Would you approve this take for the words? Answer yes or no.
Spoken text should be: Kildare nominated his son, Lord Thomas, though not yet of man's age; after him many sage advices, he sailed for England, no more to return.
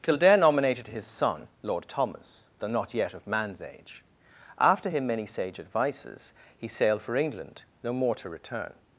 yes